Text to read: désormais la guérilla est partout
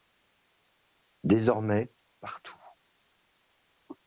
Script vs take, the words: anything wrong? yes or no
yes